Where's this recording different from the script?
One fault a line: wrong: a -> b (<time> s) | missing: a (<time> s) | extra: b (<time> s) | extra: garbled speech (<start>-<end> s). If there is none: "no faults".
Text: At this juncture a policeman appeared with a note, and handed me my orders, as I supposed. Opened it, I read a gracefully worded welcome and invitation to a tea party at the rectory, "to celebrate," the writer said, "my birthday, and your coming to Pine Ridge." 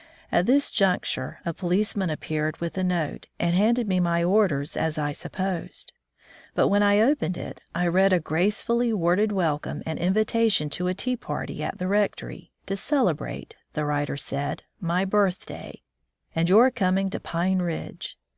extra: But when I (6.5 s)